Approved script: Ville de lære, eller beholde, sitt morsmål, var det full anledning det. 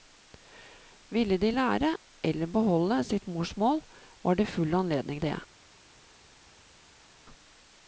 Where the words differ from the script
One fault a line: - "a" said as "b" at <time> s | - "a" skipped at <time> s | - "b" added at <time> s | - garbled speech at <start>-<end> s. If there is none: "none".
none